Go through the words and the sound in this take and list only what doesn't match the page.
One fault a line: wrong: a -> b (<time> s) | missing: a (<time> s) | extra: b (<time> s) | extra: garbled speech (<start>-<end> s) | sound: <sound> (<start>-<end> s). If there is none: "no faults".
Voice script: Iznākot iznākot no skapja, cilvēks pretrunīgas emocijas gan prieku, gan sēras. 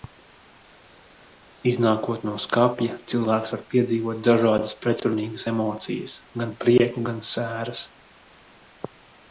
missing: iznākot (2.2 s)
extra: var piedzīvot dažādas (3.5 s)